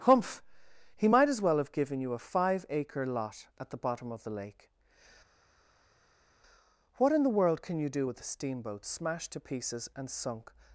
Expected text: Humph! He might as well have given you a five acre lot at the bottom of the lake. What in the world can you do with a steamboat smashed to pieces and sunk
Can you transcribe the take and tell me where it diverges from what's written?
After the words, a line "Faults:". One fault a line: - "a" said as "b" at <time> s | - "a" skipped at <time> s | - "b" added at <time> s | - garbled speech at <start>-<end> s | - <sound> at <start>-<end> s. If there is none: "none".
Humph! He might as well have given you a five acre lot at the bottom of the lake. What in the world can you do with a steamboat smashed to pieces and sunk
Faults:
none